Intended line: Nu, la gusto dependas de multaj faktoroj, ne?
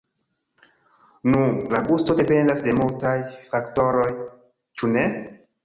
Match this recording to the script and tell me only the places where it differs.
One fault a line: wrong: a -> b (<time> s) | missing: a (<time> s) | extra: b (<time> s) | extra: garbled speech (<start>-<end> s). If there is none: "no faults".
extra: ĉu (4.8 s)